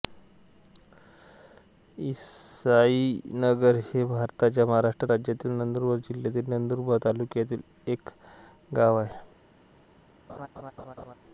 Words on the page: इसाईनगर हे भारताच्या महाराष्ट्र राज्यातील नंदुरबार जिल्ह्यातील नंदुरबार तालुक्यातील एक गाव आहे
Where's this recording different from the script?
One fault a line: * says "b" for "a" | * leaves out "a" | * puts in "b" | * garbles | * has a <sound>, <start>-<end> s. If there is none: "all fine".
* has a laugh, 10.3-11.1 s